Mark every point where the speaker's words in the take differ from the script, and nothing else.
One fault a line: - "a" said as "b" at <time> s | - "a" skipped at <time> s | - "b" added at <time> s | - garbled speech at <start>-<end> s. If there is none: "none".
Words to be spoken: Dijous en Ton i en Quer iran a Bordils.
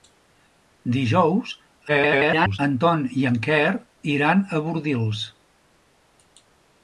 - garbled speech at 1.9-2.6 s